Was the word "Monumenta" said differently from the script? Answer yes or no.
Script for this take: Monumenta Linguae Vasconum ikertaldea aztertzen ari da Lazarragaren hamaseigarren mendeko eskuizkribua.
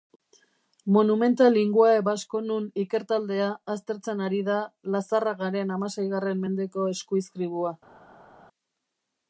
no